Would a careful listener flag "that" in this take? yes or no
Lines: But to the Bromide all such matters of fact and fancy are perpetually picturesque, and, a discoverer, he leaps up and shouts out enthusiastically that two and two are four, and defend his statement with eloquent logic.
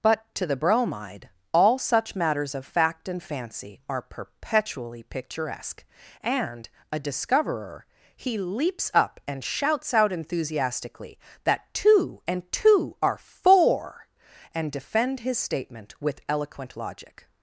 no